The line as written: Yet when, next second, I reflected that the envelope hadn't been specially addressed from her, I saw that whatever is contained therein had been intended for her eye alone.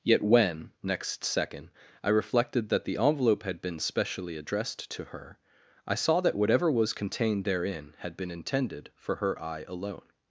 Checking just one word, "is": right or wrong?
wrong